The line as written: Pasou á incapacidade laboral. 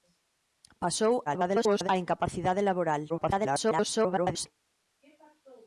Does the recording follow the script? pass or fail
fail